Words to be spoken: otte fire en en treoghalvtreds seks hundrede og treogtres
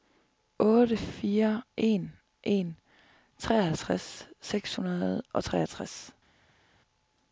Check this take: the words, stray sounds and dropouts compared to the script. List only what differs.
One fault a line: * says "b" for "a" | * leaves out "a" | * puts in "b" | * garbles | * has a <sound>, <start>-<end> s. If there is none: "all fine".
all fine